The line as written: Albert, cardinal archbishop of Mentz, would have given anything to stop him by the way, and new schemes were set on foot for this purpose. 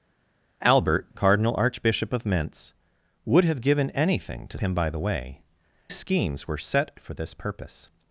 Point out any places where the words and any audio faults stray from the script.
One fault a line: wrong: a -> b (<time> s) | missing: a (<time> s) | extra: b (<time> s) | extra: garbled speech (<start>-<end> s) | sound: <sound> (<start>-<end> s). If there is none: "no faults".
missing: stop (4.6 s)
missing: and new (5.4 s)
missing: on foot (6.9 s)